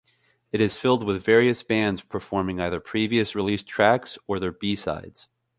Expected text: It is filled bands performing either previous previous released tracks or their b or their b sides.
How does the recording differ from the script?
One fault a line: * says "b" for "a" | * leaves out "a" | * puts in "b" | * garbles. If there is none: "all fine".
* puts in "with various"
* leaves out "previous"
* leaves out "or their b"